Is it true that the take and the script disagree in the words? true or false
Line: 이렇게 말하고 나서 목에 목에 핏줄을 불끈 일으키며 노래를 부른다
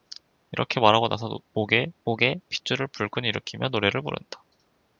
false